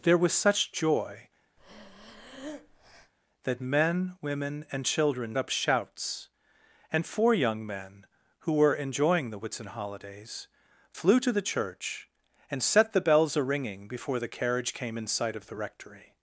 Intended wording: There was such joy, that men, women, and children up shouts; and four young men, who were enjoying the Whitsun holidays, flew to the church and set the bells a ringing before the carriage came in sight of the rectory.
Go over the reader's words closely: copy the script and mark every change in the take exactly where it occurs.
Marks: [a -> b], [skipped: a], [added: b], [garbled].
There was such joy, that men, women, and children up shouts; and four young men, who were enjoying the Whitsun holidays, flew to the church and set the bells a ringing before the carriage came in sight of the rectory.